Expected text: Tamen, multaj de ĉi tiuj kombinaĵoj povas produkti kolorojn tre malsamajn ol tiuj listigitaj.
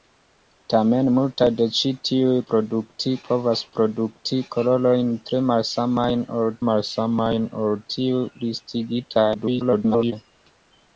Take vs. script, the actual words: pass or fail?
fail